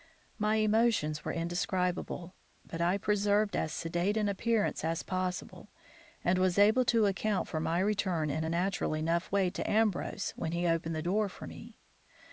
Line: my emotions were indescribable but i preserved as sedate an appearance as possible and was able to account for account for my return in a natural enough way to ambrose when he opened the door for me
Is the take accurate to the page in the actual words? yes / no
no